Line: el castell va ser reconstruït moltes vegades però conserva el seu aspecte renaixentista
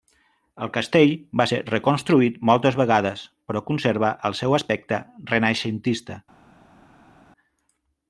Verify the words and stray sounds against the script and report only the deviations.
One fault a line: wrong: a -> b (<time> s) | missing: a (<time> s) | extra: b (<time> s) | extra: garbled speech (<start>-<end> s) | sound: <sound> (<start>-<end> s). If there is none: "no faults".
no faults